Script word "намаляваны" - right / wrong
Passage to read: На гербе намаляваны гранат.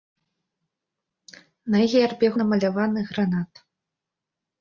right